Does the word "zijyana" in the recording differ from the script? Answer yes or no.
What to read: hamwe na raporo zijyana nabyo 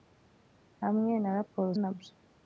yes